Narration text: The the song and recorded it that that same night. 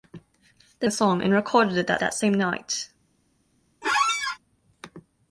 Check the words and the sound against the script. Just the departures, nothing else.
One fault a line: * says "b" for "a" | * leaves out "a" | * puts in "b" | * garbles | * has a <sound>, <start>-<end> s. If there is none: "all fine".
* has a squeak, 3.8-4.4 s